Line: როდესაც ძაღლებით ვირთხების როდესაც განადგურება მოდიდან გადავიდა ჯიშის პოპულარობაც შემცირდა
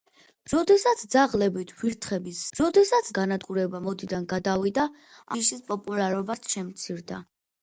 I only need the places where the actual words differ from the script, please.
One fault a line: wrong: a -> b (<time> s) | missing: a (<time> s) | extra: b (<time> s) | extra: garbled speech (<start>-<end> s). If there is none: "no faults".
no faults